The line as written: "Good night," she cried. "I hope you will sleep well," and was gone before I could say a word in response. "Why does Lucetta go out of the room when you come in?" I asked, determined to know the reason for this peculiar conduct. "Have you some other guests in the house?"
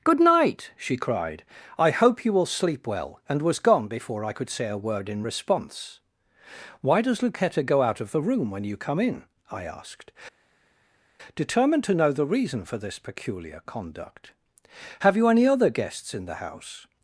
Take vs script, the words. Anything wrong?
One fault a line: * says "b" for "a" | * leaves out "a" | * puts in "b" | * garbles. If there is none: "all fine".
* says "any" for "some"